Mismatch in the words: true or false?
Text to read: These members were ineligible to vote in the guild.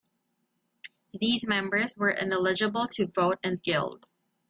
true